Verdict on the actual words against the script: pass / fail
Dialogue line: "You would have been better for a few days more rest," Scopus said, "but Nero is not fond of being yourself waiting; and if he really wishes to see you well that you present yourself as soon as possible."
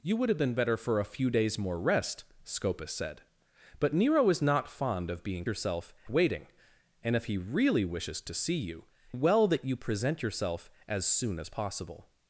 pass